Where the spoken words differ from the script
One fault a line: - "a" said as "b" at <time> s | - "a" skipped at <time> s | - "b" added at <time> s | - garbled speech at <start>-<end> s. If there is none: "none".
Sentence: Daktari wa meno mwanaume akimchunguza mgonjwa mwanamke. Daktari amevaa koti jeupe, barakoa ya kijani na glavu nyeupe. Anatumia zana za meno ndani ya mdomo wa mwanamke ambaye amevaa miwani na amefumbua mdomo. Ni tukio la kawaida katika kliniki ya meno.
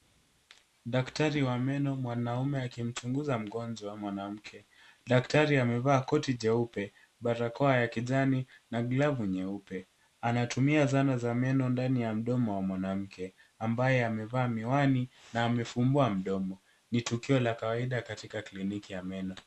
none